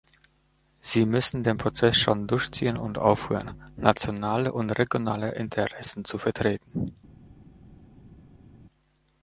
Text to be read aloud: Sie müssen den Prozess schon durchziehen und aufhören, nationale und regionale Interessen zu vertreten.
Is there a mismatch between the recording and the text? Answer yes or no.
no